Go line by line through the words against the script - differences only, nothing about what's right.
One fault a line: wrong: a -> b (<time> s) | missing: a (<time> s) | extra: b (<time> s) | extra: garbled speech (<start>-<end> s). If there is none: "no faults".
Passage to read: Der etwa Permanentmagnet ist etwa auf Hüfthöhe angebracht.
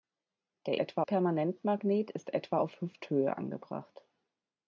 no faults